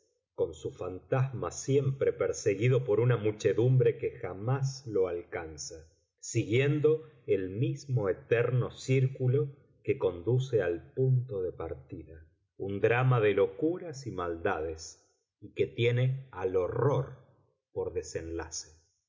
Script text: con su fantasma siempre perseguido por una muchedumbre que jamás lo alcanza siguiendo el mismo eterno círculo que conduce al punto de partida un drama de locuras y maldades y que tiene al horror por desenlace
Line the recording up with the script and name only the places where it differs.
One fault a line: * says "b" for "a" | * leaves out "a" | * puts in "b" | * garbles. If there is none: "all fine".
all fine